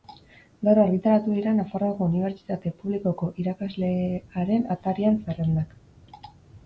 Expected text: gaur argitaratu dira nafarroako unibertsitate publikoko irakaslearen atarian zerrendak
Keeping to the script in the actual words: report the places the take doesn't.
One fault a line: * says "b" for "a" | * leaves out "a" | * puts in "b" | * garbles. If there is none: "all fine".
all fine